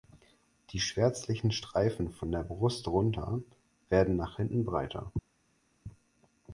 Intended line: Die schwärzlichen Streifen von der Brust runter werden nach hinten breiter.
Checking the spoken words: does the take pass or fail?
pass